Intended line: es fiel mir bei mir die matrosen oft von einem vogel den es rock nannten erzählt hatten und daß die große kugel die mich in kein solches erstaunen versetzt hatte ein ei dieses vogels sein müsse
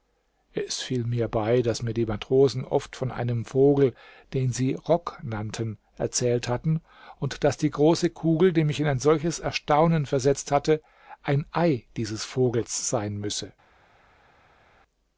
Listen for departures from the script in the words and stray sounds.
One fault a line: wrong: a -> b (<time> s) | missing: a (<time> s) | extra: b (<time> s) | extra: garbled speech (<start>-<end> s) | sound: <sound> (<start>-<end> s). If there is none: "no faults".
extra: daß (1.6 s)
wrong: es -> sie (4.5 s)
wrong: kein -> ein (8.9 s)